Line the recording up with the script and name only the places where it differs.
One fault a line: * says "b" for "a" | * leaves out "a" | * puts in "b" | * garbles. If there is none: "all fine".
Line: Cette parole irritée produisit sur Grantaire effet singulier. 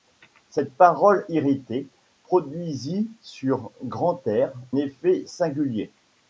all fine